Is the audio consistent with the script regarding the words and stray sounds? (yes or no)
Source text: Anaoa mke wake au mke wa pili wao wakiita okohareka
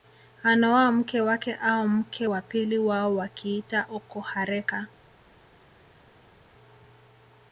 yes